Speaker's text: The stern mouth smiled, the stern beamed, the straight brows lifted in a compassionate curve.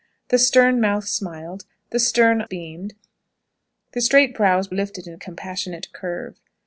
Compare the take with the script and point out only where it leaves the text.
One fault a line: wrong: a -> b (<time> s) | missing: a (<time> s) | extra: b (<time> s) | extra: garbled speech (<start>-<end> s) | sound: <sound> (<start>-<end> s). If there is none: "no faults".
no faults